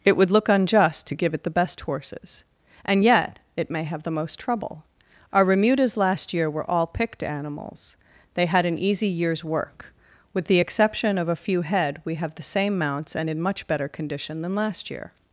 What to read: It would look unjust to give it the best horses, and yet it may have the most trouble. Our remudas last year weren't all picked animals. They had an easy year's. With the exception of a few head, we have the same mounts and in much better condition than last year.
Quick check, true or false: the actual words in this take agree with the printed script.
false